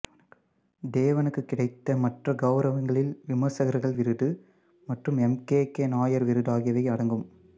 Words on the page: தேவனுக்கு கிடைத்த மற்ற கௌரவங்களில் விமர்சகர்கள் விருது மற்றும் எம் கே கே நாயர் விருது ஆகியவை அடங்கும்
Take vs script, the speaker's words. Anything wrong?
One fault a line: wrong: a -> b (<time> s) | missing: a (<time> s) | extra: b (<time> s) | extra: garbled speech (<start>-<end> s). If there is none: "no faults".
no faults